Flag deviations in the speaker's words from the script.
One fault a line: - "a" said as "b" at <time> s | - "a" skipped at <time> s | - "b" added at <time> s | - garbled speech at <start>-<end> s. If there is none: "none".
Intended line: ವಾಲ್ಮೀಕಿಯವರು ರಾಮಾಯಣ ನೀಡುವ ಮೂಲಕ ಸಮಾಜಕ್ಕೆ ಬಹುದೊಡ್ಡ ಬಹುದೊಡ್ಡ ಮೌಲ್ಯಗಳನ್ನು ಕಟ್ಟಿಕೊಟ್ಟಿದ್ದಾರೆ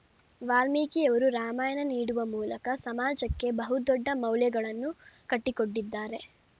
- "ಬಹುದೊಡ್ಡ" skipped at 4.1 s